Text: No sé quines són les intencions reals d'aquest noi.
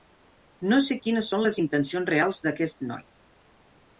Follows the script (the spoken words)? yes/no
yes